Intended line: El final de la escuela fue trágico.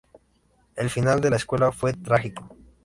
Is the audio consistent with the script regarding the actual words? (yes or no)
yes